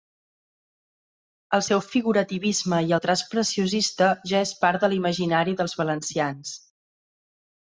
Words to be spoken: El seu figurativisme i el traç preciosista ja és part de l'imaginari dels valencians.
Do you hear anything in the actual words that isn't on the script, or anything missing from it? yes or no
no